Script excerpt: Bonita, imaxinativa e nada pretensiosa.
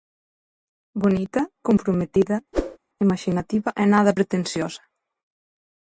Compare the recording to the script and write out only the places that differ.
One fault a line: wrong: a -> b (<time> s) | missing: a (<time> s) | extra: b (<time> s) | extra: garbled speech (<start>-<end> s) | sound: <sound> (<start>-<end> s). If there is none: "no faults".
extra: comprometida (1.7 s)
sound: whoosh (2.5-2.8 s)